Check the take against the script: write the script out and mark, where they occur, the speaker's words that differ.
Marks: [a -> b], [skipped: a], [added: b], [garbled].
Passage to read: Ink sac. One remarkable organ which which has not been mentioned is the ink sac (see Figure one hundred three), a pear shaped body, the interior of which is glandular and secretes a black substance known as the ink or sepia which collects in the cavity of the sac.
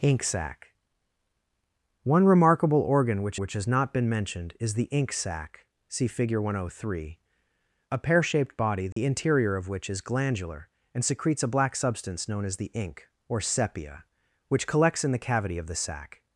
Ink sac. One remarkable organ which which has not been mentioned is the ink sac (see Figure one hundred three), a pear shaped body, the interior of which is glandular and secretes a black substance known as the ink or sepia which collects in the cavity of the sac.